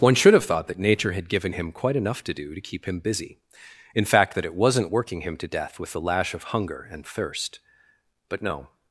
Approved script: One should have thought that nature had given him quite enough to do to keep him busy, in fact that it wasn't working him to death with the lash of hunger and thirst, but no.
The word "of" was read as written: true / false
true